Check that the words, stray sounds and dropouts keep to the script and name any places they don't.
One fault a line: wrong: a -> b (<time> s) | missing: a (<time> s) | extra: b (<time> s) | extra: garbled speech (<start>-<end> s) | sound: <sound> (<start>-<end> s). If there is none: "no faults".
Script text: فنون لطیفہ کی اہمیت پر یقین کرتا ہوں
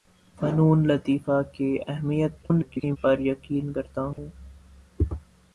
extra: garbled speech (2.4-3.0 s)
sound: dropout (4.1-4.2 s)